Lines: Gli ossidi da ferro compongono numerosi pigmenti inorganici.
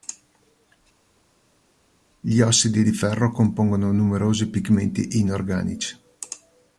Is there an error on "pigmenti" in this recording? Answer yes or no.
no